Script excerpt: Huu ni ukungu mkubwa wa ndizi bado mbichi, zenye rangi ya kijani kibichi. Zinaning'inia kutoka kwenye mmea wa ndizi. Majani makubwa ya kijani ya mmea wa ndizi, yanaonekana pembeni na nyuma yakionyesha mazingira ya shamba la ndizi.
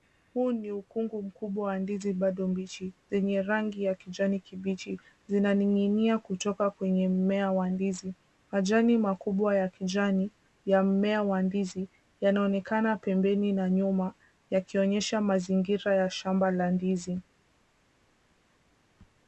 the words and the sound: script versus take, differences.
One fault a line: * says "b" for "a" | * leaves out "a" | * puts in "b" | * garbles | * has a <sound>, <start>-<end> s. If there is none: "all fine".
all fine